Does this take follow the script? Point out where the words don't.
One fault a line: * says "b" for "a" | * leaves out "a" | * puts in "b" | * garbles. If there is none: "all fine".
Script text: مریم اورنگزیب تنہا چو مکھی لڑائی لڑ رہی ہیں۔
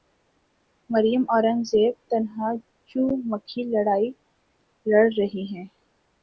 all fine